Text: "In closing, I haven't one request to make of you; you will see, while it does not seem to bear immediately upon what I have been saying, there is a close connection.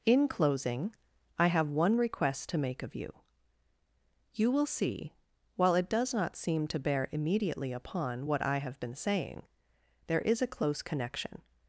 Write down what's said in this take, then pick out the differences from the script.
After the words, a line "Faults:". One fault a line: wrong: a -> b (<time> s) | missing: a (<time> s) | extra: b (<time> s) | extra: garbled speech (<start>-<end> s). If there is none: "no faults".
"In closing, I have one request to make of you; you will see, while it does not seem to bear immediately upon what I have been saying, there is a close connection.
Faults:
wrong: haven't -> have (1.5 s)